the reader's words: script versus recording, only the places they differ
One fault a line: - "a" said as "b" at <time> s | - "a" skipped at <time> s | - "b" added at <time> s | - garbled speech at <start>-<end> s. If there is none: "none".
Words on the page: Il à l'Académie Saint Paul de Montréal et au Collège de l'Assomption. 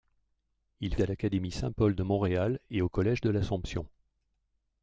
none